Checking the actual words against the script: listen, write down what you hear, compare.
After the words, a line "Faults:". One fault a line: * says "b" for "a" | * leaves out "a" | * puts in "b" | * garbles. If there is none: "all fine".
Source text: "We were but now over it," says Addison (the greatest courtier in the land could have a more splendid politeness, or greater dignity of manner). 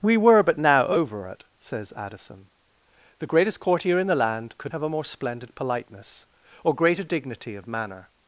"We were but now over it," says Addison (the greatest courtier in the land could have a more splendid politeness, or greater dignity of manner).
Faults:
all fine